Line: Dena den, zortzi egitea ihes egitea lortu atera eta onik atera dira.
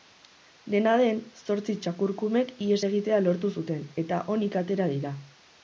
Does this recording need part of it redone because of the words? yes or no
yes